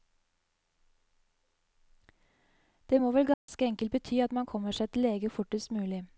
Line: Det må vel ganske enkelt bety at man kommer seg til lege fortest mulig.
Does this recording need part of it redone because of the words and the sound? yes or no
yes